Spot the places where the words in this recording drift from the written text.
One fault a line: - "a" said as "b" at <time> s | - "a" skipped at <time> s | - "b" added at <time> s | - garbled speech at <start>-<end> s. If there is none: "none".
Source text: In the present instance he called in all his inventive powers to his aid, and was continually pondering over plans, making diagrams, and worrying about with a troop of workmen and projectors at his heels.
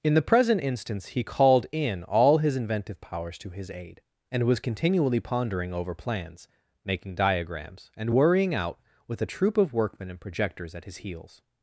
- "about" said as "out" at 8.5 s